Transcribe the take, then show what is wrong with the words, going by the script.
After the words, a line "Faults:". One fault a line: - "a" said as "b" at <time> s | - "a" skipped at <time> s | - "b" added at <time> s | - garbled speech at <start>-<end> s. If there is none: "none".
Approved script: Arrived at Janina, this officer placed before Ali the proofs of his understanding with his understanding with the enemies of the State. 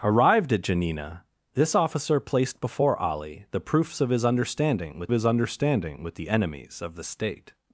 Arrived at Janina, this officer placed before Ali the proofs of his understanding with his understanding with the enemies of the State.
Faults:
none